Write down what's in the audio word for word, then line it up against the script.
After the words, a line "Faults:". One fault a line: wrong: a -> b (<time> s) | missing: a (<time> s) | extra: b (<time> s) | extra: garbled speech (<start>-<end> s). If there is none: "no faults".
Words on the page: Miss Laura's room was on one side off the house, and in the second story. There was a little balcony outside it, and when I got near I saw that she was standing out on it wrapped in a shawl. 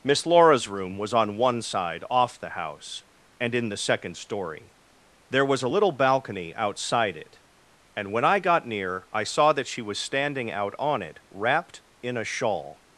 Miss Laura's room was on one side off the house, and in the second story. There was a little balcony outside it, and when I got near I saw that she was standing out on it wrapped in a shawl.
Faults:
no faults